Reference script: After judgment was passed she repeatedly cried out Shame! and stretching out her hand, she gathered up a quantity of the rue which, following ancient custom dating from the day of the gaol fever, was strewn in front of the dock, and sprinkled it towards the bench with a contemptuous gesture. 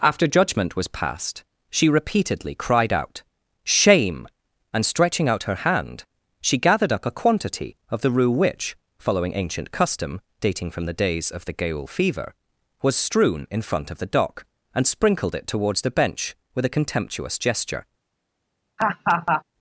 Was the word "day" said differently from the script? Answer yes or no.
yes